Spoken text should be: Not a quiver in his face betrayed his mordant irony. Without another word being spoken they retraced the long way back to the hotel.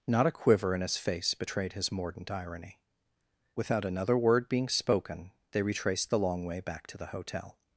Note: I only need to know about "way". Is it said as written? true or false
true